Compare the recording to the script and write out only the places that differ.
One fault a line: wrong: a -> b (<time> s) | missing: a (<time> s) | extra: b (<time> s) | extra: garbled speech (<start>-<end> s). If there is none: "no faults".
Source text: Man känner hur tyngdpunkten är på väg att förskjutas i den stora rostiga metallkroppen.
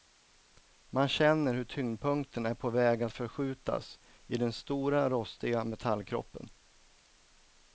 no faults